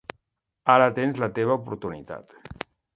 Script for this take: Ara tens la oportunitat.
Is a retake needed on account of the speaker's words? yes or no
yes